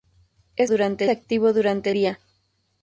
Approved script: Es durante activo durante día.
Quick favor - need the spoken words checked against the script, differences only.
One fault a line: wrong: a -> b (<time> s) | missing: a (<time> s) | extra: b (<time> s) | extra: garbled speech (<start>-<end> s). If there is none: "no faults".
no faults